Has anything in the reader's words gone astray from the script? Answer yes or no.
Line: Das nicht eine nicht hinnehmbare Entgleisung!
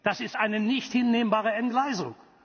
yes